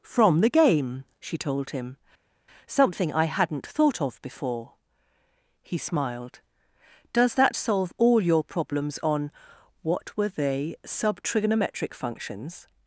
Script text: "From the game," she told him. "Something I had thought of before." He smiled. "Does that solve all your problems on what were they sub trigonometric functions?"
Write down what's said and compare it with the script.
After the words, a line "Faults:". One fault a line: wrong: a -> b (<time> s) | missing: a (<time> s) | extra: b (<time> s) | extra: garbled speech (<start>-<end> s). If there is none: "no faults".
"From the game," she told him. "Something I hadn't thought of before." He smiled. "Does that solve all your problems on what were they sub trigonometric functions?"
Faults:
wrong: had -> hadn't (3.2 s)